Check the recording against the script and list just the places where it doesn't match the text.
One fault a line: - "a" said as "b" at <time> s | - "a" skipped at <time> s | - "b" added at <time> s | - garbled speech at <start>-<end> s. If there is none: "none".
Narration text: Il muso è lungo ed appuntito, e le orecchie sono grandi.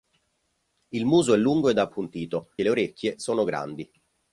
none